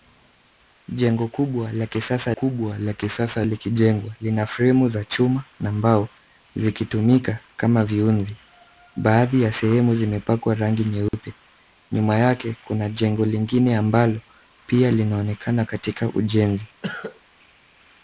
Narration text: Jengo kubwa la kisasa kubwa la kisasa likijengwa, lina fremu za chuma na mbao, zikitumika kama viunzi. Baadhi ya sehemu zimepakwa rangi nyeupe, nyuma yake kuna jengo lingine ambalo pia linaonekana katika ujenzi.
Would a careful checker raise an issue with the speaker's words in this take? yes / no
no